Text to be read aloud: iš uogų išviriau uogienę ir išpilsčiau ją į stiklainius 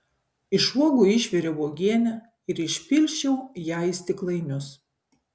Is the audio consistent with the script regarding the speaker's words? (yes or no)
yes